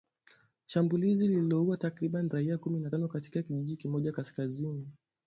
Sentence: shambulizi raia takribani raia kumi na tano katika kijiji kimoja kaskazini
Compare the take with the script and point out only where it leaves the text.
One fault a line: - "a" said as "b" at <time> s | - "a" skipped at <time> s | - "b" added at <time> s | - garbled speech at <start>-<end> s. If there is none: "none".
- "raia" said as "lililoua" at 1.3 s